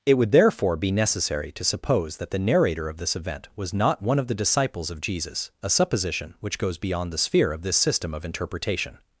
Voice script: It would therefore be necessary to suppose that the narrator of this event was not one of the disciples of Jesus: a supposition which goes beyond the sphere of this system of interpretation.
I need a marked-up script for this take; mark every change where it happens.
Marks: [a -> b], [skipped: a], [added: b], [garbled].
It would therefore be necessary to suppose that the narrator of this event was not one of the disciples of Jesus: a supposition which goes beyond the sphere of this system of interpretation.